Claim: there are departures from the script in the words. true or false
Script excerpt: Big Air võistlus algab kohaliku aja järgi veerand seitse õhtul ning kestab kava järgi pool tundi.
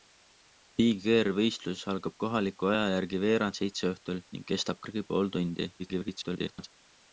true